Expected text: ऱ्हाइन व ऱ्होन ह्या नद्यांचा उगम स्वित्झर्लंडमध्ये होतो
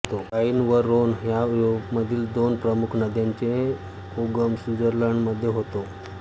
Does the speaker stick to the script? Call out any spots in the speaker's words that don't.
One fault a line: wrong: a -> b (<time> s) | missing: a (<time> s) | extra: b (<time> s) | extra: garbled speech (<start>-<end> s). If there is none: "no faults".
extra: युरोपामधील दोन प्रमुख (1.4 s)